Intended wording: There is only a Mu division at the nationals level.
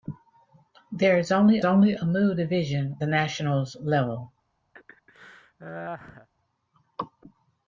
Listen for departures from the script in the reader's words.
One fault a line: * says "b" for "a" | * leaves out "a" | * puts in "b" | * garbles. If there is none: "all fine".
* puts in "only"
* leaves out "at"